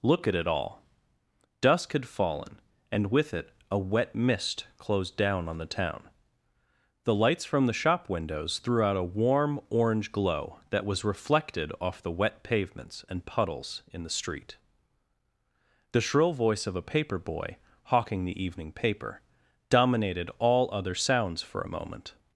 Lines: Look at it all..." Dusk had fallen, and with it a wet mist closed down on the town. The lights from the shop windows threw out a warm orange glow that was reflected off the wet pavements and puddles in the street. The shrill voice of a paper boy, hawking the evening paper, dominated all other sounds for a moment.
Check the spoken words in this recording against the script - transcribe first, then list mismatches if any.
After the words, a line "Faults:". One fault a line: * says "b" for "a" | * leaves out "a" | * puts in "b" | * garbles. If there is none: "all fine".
Look at it all..." Dusk had fallen, and with it a wet mist closed down on the town. The lights from the shop windows threw out a warm orange glow that was reflected off the wet pavements and puddles in the street. The shrill voice of a paper boy, hawking the evening paper, dominated all other sounds for a moment.
Faults:
all fine